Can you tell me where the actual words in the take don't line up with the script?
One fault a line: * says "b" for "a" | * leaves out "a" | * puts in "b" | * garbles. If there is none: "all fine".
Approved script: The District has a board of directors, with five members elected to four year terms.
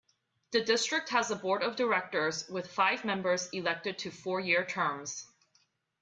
all fine